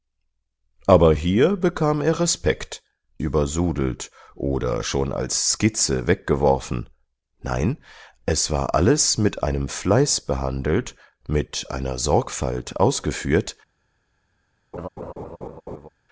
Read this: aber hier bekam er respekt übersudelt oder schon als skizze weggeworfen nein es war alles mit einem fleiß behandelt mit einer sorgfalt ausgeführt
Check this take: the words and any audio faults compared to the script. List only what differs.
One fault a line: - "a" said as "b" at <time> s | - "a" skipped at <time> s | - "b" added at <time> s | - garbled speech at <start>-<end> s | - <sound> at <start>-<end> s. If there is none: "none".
- laugh at 14.7-15.9 s